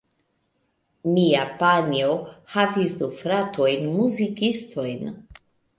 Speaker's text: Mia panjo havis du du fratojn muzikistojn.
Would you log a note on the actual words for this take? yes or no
yes